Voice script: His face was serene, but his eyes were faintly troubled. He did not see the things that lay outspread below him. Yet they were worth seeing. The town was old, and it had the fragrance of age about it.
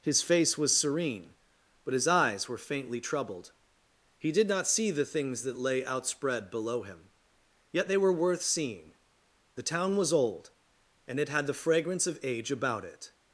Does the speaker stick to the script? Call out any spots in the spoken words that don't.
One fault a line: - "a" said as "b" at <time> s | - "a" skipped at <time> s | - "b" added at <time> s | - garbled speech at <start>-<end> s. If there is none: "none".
none